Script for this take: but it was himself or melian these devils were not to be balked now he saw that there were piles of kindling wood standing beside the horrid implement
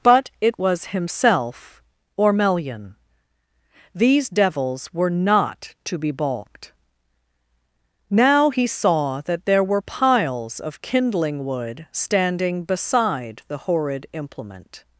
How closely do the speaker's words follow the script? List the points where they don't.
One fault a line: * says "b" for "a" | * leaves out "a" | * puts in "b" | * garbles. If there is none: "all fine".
all fine